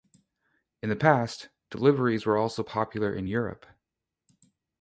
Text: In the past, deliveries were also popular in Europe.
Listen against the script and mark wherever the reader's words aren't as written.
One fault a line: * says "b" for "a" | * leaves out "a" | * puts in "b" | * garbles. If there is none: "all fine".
all fine